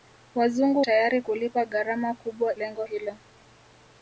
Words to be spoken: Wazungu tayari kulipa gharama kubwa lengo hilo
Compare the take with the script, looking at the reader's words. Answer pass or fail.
pass